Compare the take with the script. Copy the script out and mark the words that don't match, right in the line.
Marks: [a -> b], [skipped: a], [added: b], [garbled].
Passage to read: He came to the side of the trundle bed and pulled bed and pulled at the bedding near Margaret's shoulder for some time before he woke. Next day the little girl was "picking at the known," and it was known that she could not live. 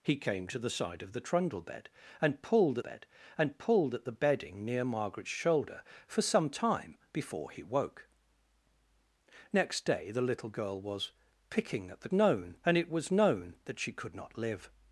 He came to the side of the trundle bed and pulled bed and pulled at the bedding near Margaret's shoulder for some time before he woke. Next day the little girl was "picking at the known," and it was known that she could not live.